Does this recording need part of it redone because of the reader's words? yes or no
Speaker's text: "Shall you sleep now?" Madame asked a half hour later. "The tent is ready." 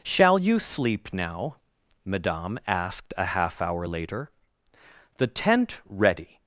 yes